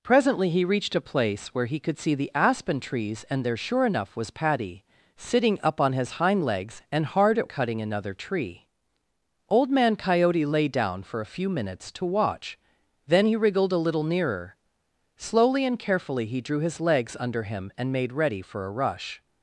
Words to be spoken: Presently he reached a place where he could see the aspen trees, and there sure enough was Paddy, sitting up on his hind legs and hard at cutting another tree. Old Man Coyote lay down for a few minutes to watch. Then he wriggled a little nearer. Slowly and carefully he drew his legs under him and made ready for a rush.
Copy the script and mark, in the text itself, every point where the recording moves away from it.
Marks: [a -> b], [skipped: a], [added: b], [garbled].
Presently he reached a place where he could see the aspen trees, and there sure enough was Paddy, sitting up on his hind legs and hard at cutting another tree. Old Man Coyote lay down for a few minutes to watch. Then he wriggled a little nearer. Slowly and carefully he drew his legs under him and made ready for a rush.